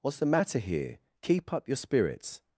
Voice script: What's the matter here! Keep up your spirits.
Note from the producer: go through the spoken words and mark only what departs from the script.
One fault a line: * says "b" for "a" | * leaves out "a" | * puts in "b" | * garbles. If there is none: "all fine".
all fine